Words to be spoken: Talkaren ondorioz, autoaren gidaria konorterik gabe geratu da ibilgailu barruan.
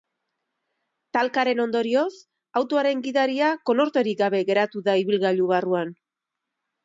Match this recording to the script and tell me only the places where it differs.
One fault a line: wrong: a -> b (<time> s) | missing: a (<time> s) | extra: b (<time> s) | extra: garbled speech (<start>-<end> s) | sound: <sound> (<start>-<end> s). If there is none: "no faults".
no faults